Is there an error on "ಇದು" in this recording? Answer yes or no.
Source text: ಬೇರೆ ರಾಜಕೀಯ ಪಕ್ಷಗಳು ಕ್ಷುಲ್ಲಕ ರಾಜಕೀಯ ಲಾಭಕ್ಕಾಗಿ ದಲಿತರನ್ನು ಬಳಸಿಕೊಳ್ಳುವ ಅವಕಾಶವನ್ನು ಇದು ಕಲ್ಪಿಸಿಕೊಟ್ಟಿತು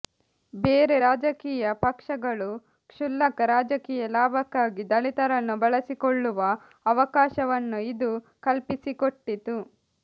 no